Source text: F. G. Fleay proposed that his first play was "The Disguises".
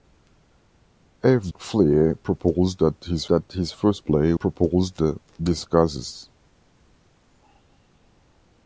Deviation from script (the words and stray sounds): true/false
true